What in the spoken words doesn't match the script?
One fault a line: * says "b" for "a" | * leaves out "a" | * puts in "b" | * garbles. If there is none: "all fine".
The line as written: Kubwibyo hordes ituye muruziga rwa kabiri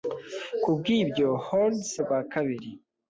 * leaves out "ituye muruziga"